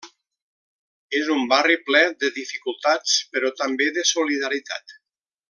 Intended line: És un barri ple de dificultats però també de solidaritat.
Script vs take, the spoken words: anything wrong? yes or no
no